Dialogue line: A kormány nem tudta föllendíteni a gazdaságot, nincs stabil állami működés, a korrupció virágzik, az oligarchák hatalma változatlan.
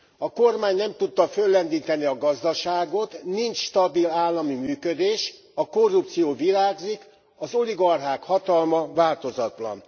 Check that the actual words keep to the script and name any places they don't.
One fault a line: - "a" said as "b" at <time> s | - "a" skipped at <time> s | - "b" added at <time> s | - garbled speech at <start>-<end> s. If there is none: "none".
none